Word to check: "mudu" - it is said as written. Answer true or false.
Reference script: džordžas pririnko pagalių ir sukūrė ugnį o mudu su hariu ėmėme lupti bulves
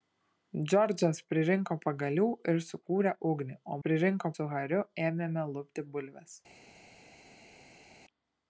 false